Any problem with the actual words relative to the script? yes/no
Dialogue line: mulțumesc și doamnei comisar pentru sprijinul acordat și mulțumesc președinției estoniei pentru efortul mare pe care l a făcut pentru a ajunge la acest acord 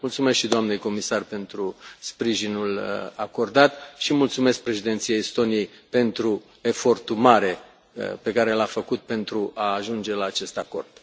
no